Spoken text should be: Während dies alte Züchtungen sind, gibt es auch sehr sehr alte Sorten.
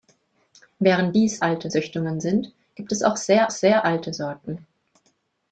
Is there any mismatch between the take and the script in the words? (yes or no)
no